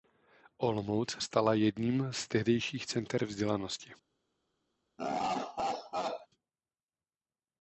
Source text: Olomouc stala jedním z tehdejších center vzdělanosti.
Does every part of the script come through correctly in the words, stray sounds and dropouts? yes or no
no